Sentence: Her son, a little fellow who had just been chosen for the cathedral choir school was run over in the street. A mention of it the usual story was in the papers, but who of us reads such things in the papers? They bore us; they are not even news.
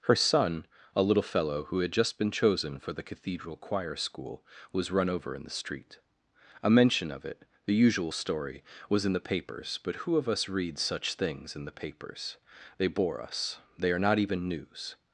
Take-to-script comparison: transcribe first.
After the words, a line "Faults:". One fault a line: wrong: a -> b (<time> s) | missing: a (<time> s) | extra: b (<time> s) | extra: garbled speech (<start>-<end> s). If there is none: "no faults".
Her son, a little fellow who had just been chosen for the cathedral choir school was run over in the street. A mention of it the usual story was in the papers, but who of us reads such things in the papers? They bore us; they are not even news.
Faults:
no faults